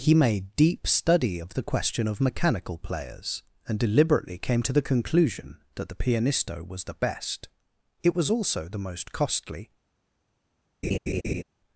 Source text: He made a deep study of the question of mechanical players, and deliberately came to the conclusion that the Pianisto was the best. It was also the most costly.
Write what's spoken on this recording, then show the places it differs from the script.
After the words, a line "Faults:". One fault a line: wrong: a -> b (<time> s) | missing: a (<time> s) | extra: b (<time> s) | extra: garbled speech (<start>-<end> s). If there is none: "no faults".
He made deep study of the question of mechanical players, and deliberately came to the conclusion that the Pianisto was the best. It was also the most costly.
Faults:
missing: a (0.6 s)